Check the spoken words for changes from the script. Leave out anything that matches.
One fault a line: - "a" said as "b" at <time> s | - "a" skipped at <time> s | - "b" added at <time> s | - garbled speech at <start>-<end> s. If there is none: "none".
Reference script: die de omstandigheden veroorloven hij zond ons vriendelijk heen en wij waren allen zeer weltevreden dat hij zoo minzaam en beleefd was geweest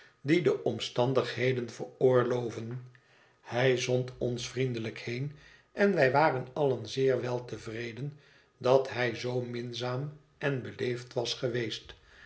none